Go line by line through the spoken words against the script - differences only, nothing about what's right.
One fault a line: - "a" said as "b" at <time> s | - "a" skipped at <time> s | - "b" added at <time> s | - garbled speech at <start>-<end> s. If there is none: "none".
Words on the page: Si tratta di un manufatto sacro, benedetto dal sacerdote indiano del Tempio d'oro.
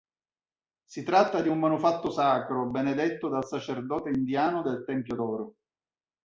none